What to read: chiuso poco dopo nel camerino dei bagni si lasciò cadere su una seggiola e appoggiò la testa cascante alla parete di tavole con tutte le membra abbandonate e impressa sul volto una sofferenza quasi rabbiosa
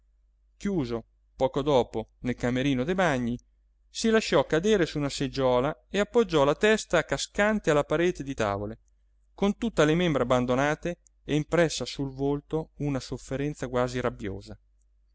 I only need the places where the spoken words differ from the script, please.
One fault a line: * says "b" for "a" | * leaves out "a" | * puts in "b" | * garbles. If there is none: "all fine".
all fine